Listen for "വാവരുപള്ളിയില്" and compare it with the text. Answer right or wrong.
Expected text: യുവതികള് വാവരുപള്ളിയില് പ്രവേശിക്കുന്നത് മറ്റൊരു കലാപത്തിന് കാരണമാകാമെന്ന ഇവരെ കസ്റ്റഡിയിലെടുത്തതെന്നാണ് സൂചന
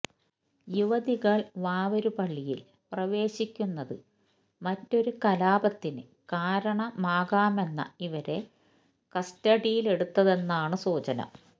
right